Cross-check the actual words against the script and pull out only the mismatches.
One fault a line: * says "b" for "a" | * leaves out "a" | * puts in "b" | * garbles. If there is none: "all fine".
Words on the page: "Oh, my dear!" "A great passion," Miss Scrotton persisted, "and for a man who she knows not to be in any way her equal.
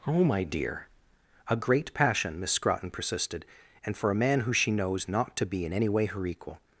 all fine